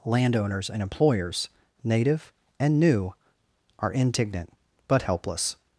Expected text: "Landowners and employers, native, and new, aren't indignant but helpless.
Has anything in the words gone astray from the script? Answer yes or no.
yes